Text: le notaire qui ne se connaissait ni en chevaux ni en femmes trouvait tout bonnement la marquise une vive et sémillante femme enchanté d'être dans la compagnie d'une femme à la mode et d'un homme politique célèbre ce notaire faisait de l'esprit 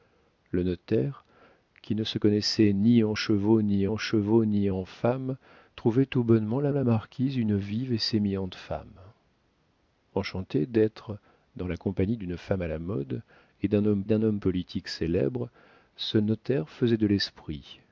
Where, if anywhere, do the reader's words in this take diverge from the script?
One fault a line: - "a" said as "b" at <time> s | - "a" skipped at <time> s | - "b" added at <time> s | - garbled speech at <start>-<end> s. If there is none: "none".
- "chevaux ni en" added at 4.0 s
- "la" added at 6.7 s
- "d'un homme" added at 14.0 s